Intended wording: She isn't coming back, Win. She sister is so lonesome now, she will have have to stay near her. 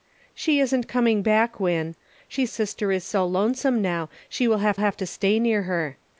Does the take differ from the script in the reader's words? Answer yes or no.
no